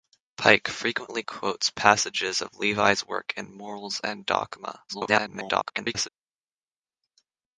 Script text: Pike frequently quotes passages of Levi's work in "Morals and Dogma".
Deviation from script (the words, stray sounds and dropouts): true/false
true